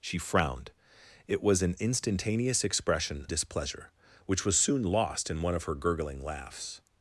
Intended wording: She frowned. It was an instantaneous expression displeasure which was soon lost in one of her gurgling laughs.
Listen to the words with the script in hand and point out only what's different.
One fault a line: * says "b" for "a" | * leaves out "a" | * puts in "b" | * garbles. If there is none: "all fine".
all fine